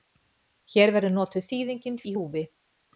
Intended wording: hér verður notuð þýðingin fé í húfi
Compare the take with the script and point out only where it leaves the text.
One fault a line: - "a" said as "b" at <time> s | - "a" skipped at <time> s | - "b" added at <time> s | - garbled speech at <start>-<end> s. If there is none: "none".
- "fé" skipped at 2.0 s